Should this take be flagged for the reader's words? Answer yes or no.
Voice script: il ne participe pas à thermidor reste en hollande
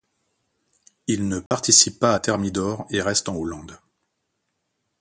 yes